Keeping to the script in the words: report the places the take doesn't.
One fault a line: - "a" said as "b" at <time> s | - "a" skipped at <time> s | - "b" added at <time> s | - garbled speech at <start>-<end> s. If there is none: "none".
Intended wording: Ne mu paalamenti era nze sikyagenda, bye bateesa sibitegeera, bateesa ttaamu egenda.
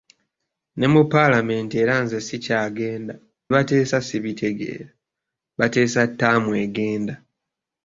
- "bye" skipped at 3.1 s